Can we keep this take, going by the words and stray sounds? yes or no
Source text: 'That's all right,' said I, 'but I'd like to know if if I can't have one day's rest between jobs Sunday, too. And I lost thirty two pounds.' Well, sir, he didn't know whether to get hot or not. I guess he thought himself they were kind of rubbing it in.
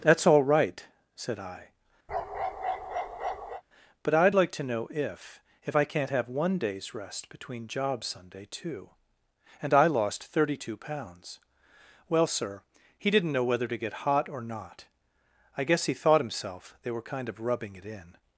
no